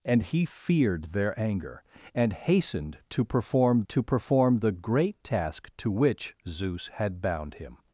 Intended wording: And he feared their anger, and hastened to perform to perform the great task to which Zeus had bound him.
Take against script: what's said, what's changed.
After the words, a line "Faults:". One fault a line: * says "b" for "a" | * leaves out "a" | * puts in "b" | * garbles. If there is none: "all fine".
And he feared their anger, and hastened to perform to perform the great task to which Zeus had bound him.
Faults:
all fine